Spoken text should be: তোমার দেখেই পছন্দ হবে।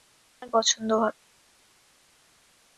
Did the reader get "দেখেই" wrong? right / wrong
wrong